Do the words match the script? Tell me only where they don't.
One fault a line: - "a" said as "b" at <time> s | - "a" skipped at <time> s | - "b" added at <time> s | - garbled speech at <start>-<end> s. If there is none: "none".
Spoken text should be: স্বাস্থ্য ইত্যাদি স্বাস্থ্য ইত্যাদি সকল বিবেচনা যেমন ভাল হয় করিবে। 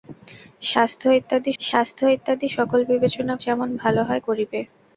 none